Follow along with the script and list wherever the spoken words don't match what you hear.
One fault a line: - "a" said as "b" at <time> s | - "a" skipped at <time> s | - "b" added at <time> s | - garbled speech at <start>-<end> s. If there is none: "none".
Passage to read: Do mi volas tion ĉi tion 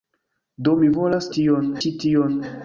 none